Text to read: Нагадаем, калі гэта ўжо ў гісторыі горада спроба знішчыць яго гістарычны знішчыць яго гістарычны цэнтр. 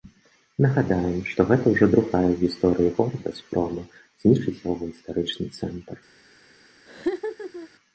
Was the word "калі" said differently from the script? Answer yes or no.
yes